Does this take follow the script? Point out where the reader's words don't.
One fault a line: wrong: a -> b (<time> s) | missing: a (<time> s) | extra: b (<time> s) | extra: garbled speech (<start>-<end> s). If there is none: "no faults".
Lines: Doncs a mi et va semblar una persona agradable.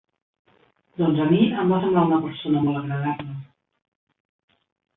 wrong: et -> em (1.6 s)
extra: molt (2.7 s)